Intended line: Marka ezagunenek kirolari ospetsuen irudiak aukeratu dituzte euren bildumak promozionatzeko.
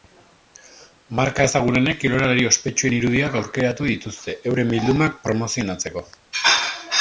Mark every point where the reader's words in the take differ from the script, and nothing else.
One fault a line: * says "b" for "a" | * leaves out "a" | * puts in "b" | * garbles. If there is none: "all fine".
all fine